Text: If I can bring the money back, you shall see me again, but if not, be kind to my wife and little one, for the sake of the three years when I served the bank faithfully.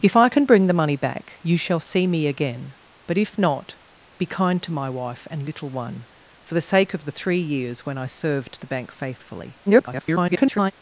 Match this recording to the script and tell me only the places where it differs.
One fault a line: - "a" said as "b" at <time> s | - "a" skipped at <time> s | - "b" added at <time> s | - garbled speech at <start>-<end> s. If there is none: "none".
- garbled speech at 9.7-10.7 s